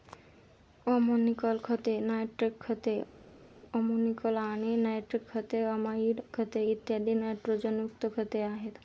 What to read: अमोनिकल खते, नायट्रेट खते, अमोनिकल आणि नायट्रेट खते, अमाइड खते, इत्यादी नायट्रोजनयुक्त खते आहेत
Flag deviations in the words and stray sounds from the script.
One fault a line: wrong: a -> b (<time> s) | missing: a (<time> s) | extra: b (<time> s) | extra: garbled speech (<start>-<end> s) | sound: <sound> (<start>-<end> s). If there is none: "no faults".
no faults